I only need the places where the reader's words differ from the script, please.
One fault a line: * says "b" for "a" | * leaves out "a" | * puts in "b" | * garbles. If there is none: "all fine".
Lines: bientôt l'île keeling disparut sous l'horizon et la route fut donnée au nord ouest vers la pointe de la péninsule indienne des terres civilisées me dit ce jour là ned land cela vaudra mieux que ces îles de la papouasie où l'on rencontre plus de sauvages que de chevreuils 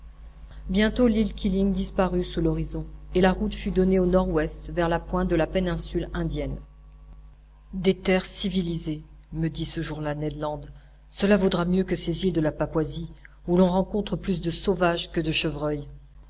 all fine